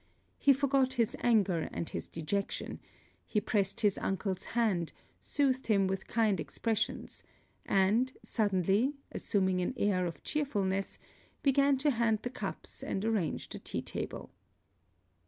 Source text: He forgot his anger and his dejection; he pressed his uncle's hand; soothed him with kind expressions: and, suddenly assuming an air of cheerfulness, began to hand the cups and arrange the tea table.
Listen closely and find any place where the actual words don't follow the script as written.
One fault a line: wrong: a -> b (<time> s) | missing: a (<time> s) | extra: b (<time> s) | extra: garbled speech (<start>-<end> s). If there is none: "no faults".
no faults